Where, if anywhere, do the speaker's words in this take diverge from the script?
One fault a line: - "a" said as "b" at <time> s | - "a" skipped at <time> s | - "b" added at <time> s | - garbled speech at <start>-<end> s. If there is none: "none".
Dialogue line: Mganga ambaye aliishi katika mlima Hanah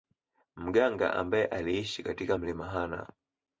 none